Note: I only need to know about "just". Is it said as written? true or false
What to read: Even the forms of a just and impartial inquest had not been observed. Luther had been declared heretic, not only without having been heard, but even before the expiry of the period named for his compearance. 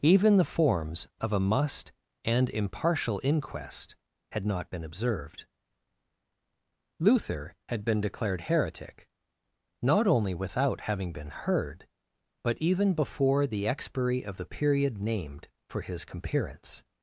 false